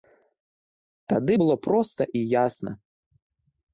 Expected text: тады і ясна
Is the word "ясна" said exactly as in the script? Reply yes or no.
yes